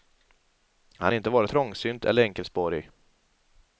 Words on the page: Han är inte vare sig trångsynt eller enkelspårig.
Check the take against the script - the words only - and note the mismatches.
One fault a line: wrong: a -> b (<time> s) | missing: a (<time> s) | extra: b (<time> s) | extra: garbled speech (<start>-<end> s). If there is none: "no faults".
missing: sig (1.5 s)